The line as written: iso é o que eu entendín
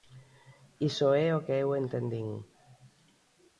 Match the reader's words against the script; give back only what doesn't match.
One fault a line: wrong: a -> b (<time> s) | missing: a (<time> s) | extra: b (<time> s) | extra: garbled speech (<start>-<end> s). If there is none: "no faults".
no faults